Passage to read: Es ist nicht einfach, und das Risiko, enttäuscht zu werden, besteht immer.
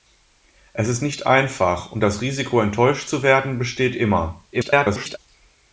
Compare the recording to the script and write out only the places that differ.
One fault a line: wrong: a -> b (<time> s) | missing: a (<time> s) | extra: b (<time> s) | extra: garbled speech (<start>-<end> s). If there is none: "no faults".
extra: garbled speech (4.5-5.2 s)